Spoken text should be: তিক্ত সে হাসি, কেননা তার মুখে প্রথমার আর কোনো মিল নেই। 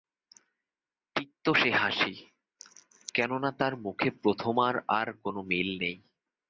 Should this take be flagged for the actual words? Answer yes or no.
no